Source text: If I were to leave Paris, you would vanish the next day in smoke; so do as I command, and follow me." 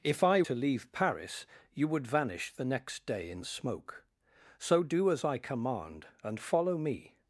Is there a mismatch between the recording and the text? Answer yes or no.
yes